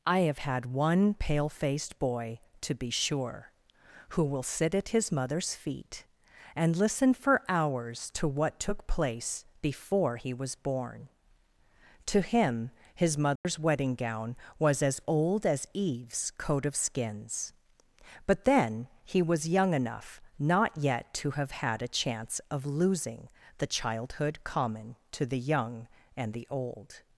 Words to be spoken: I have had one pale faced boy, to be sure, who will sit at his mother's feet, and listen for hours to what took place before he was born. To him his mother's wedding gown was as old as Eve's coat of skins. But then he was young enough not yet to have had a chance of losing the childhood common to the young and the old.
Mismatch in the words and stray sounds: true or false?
true